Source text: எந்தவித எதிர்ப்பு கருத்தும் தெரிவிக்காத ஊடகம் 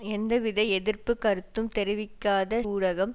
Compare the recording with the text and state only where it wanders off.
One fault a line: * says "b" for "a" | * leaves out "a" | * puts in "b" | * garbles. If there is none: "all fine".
all fine